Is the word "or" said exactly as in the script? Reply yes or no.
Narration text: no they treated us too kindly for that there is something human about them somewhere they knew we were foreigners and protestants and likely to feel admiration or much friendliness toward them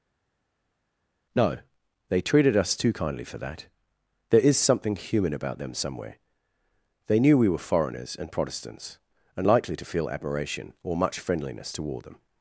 yes